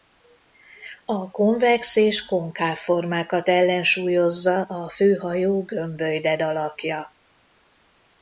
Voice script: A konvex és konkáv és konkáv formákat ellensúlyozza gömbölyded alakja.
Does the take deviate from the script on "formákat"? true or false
true